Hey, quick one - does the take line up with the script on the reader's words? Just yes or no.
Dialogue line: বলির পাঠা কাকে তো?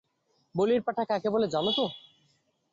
no